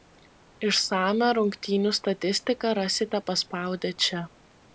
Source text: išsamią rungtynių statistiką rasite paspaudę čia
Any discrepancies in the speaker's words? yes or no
no